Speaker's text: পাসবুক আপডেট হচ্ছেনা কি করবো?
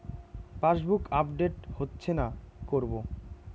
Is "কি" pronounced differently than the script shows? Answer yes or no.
yes